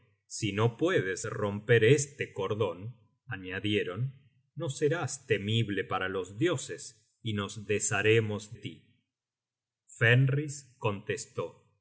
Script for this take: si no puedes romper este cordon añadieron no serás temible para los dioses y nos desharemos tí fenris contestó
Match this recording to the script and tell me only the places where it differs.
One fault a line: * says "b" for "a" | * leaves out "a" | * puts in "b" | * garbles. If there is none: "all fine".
all fine